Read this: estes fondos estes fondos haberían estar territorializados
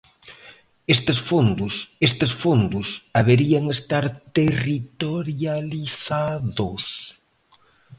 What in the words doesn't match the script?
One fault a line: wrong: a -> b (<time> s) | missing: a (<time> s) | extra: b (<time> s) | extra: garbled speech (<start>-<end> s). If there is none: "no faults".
no faults